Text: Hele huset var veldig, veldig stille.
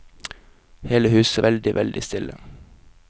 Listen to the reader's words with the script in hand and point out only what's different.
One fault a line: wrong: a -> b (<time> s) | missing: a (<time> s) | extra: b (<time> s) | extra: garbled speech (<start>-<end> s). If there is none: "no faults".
missing: var (1.4 s)